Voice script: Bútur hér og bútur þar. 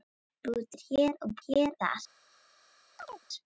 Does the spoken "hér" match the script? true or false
true